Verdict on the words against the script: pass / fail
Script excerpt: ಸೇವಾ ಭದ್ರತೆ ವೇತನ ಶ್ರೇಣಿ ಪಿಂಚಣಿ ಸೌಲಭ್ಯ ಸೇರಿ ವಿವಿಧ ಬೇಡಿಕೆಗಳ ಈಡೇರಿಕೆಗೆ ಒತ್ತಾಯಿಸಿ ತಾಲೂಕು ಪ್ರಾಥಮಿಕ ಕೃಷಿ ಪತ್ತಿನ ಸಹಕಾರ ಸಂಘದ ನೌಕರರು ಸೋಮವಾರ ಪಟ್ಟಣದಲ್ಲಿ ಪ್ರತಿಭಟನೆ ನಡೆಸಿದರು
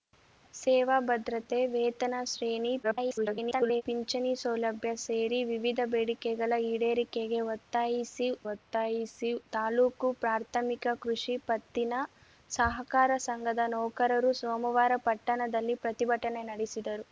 fail